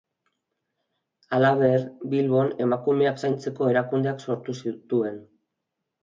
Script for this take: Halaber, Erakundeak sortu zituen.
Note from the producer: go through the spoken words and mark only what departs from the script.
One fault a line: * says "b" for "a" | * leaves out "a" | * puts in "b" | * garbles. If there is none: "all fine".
* puts in "Bilbon emakumeak zaintzeko"